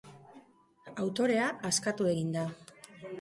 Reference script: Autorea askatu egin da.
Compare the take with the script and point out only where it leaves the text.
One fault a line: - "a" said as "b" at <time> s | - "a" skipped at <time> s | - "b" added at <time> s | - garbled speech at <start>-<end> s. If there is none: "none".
none